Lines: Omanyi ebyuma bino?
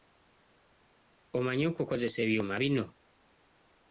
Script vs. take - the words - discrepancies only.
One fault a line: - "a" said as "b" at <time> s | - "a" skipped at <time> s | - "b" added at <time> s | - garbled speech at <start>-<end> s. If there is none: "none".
- "okukozesa" added at 1.7 s